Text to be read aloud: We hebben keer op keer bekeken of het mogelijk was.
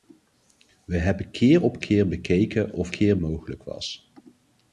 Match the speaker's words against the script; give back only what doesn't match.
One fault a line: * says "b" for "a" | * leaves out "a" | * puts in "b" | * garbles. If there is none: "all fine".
* says "keer" for "het"